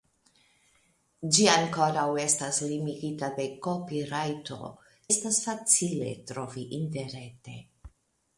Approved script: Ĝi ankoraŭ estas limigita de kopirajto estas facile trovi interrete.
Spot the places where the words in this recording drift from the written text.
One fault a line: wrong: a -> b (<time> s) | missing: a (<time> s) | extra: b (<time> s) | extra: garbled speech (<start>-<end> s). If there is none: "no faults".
no faults